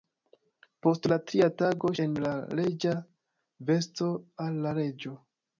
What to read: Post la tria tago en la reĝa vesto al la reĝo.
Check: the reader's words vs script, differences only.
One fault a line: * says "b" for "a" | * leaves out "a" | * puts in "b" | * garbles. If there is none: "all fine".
all fine